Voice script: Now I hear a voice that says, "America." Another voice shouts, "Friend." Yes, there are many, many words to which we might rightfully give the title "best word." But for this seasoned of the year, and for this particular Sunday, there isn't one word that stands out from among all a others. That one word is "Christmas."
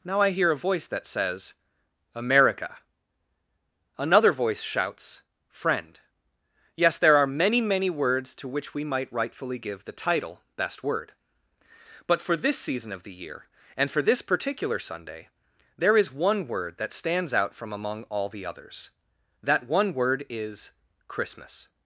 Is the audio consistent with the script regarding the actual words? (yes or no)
no